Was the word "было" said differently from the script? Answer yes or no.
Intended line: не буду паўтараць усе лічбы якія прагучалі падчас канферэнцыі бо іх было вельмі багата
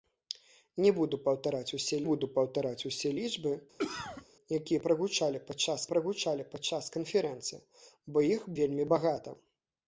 yes